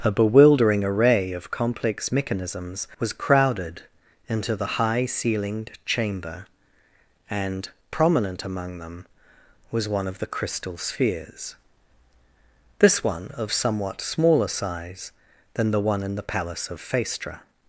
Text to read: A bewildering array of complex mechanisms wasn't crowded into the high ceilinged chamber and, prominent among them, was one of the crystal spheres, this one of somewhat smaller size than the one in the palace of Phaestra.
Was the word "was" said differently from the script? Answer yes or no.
no